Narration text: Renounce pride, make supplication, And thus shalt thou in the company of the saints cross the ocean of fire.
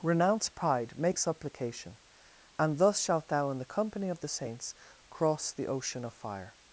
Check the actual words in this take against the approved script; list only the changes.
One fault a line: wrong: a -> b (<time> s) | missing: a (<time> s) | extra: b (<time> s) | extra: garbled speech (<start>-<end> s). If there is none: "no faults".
no faults